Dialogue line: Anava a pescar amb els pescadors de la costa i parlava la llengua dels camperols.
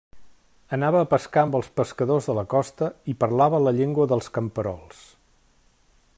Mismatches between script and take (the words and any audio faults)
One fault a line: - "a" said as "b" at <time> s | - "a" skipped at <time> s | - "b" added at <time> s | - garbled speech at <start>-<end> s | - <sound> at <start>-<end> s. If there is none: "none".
none